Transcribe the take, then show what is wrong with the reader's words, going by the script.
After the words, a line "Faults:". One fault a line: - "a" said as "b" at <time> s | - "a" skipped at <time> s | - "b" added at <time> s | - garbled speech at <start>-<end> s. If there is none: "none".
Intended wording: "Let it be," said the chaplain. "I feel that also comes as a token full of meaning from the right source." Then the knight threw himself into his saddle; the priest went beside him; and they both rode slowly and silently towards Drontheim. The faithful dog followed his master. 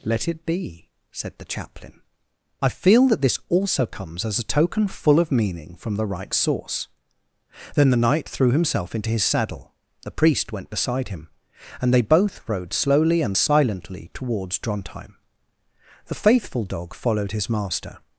"Let it be," said the chaplain. "I feel that this also comes as a token full of meaning from the right source." Then the knight threw himself into his saddle; the priest went beside him; and they both rode slowly and silently towards Drontheim. The faithful dog followed his master.
Faults:
- "this" added at 3.2 s